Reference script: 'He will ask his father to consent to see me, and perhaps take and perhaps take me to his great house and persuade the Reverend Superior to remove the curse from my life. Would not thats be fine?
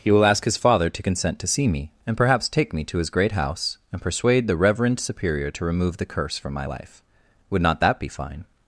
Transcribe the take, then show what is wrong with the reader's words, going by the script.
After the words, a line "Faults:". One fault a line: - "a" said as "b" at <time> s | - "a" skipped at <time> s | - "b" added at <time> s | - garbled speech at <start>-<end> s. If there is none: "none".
'He will ask his father to consent to see me, and perhaps take me to his great house and persuade the Reverend Superior to remove the curse from my life. Would not that be fine?
Faults:
- "and perhaps take" skipped at 2.7 s
- "thats" said as "that" at 7.8 s